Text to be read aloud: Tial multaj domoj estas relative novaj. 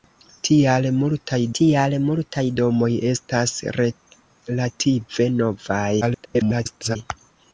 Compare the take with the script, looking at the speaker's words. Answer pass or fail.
fail